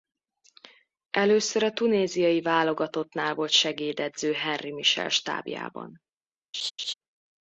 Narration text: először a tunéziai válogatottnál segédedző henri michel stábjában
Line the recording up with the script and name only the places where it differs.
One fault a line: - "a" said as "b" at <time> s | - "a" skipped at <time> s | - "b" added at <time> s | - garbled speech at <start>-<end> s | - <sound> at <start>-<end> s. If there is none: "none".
- "volt" added at 3.3 s
- laugh at 6.5-6.9 s